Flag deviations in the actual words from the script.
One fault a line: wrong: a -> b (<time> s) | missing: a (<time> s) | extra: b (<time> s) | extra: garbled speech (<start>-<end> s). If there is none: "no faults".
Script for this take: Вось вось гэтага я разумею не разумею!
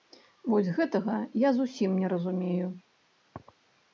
missing: вось (0.7 s)
wrong: разумею -> зусім (1.6 s)